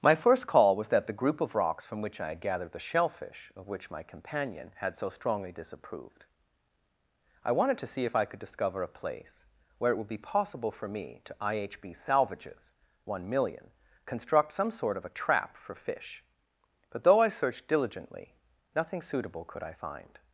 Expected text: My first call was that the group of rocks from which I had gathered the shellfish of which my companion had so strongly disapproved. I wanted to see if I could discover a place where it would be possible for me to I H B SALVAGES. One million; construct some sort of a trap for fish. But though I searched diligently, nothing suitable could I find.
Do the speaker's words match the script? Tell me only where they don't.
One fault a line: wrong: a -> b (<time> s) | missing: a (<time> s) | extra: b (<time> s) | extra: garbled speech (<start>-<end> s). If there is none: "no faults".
no faults